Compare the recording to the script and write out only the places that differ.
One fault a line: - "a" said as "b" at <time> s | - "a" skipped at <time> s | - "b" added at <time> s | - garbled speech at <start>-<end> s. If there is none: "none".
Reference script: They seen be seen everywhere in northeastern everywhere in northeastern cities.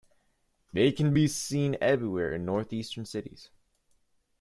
- "seen" said as "can" at 0.9 s
- "everywhere in northeastern" skipped at 3.0 s